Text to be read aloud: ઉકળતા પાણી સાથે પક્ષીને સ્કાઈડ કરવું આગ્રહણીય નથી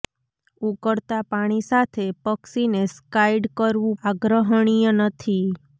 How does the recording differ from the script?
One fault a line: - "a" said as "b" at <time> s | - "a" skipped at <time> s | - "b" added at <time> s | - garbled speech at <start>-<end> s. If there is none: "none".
none